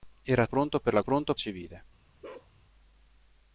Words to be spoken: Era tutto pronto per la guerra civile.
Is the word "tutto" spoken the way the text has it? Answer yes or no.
no